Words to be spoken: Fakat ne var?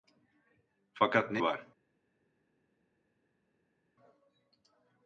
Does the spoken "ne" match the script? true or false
true